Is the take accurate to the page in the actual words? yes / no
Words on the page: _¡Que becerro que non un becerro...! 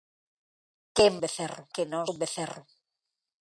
yes